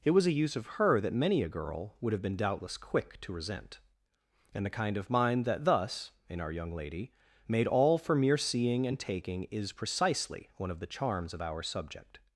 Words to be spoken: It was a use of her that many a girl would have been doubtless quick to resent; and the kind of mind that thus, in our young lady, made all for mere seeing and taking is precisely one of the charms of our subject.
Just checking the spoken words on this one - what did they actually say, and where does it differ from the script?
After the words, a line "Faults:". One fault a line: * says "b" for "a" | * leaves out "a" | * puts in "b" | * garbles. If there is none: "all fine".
It was a use of her that many a girl would have been doubtless quick to resent; and the kind of mind that thus, in our young lady, made all for mere seeing and taking is precisely one of the charms of our subject.
Faults:
all fine